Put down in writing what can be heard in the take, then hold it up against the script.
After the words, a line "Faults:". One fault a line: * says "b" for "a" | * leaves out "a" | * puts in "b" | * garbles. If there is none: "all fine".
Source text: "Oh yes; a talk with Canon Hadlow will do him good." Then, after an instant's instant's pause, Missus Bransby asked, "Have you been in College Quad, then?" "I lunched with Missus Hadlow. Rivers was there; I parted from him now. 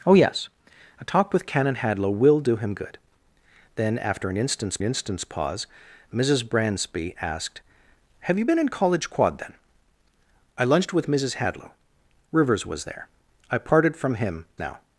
"Oh yes; a talk with Canon Hadlow will do him good." Then, after an instant's instant's pause, Missus Bransby asked, "Have you been in College Quad, then?" "I lunched with Missus Hadlow. Rivers was there; I parted from him now.
Faults:
all fine